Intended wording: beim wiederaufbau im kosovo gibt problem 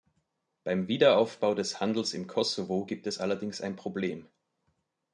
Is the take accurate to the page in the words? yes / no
no